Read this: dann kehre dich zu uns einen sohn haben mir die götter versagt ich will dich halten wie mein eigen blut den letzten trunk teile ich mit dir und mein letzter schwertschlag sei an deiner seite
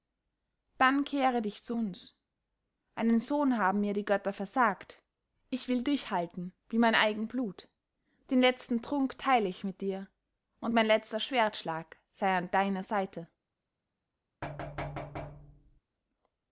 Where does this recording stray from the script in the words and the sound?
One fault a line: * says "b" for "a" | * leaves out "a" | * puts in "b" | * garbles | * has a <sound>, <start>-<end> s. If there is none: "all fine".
* has a thud, 14.4-15.8 s